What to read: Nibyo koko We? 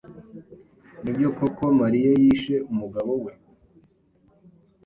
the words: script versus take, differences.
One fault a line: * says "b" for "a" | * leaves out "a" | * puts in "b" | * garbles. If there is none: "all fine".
* puts in "Mariya yishe umugabo"